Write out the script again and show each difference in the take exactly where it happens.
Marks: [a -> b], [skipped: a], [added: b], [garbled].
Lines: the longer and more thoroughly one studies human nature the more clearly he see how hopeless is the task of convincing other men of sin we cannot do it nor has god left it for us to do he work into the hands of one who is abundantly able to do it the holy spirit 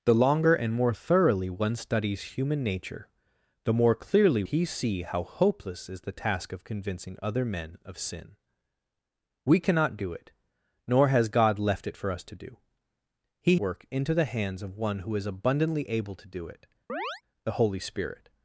the longer and more thoroughly one studies human nature the more clearly he see how hopeless is the task of convincing other men of sin we cannot do it nor has god left it for us to do he work into the hands of one who is abundantly able to do it the holy spirit